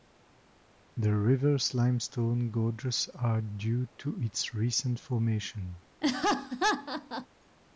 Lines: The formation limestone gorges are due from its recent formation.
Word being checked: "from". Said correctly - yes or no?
no